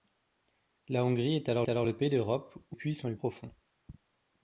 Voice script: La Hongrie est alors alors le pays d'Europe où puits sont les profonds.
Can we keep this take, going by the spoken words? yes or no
yes